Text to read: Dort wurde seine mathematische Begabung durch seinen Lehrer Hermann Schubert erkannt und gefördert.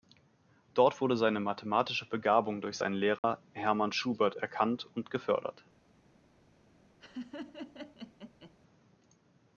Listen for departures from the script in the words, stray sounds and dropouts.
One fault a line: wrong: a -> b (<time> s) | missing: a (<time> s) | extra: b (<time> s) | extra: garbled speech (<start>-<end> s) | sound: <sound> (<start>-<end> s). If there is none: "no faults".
sound: dropout (3.2-3.2 s)
sound: laugh (7.0-8.5 s)